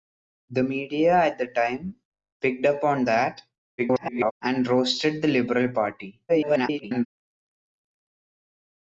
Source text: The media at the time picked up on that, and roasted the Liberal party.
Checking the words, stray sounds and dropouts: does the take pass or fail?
fail